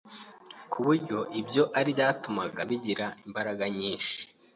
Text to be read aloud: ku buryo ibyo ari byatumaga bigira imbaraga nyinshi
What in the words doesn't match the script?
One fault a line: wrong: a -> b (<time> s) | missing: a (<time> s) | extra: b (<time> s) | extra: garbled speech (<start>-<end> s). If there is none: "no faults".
no faults